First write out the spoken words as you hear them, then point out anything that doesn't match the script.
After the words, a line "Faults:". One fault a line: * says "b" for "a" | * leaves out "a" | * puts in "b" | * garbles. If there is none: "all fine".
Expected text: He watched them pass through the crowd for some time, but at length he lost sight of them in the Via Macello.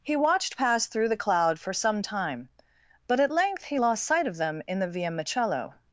He watched pass through the cloud for some time, but at length he lost sight of them in the Via Macello.
Faults:
* leaves out "them"
* says "cloud" for "crowd"